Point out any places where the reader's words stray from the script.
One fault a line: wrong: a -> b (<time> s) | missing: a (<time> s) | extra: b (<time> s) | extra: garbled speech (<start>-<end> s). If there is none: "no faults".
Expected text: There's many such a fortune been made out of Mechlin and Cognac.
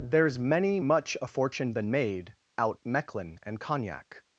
wrong: such -> much (0.8 s)
missing: of (2.8 s)